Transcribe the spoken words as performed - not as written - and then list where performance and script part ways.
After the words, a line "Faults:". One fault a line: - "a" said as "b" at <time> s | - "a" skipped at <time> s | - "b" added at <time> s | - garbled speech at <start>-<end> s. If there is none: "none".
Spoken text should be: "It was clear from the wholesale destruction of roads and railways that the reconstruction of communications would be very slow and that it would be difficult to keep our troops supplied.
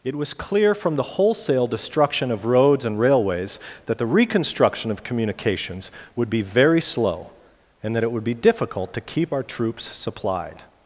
"It was clear from the wholesale destruction of roads and railways that the reconstruction of communications would be very slow and that it would be difficult to keep our troops supplied.
Faults:
none